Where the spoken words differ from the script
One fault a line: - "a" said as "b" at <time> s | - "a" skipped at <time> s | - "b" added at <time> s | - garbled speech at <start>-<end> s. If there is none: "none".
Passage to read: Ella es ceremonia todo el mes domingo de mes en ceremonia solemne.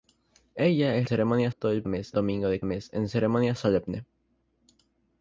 none